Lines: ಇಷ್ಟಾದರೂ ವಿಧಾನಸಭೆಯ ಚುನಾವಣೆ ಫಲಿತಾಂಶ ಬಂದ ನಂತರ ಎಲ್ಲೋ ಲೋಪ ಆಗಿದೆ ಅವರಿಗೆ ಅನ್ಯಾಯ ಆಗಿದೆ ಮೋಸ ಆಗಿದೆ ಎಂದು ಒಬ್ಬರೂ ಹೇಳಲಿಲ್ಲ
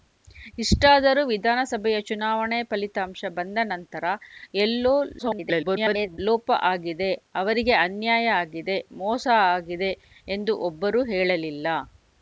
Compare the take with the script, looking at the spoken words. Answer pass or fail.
fail